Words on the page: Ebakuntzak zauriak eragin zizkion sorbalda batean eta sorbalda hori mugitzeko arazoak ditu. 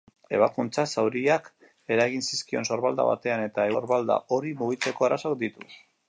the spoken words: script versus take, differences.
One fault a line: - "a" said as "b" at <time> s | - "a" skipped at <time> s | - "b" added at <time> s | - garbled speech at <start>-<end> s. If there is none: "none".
none